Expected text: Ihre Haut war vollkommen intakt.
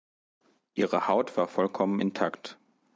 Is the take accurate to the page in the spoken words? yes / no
yes